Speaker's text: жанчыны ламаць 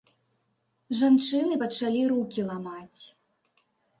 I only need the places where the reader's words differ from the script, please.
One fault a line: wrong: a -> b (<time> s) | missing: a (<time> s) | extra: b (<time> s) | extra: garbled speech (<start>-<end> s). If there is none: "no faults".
extra: пачалі рукі (1.6 s)